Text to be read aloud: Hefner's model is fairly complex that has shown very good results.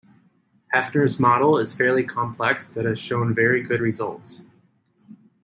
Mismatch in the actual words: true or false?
false